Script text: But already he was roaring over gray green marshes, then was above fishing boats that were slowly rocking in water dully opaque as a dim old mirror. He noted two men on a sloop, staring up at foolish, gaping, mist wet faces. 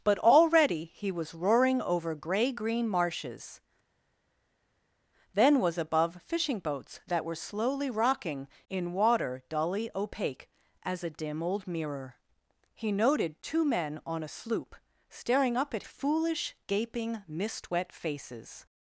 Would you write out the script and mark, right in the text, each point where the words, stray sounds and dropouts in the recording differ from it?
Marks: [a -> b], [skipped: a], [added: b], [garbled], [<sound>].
But already he was roaring over gray green marshes, then was above fishing boats that were slowly rocking in water dully opaque as a dim old mirror. He noted two men on a sloop, staring up at foolish, gaping, mist wet faces.